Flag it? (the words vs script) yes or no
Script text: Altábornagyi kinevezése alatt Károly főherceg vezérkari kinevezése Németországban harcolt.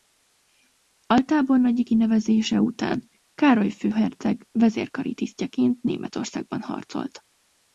yes